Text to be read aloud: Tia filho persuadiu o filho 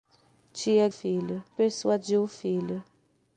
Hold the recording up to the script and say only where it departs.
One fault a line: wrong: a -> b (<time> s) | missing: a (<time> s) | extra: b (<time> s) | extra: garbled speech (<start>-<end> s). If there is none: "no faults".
no faults